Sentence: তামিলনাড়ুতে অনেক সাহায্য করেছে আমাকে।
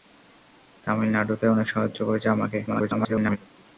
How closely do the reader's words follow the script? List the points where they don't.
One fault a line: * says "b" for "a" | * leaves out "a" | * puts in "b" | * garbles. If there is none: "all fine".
* garbles